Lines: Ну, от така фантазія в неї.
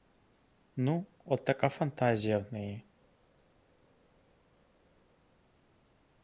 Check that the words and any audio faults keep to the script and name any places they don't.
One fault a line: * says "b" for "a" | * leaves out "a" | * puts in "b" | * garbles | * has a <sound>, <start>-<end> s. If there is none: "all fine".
all fine